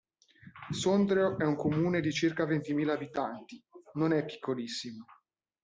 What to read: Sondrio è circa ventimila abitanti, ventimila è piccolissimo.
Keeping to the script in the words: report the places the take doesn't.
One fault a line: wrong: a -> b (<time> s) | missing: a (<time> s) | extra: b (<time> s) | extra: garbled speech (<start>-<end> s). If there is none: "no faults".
extra: un comune di (1.4 s)
wrong: ventimila -> non (4.0 s)